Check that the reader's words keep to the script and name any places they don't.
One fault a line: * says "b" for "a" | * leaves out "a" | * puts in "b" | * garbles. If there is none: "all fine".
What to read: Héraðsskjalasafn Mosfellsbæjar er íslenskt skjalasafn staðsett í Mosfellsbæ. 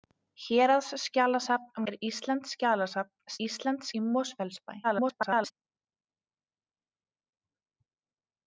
* leaves out "Mosfellsbæjar"
* says "íslenskt" for "staðsett"
* garbles